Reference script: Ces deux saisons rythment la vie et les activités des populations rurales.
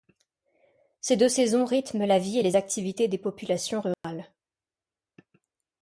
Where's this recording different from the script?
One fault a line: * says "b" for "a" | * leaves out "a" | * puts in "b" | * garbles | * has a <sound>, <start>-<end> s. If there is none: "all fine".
* has a dropout, 3.9-4.0 s